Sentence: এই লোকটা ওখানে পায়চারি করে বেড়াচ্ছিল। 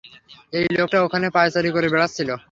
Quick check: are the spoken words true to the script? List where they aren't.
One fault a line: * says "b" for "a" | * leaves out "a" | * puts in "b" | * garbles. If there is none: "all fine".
all fine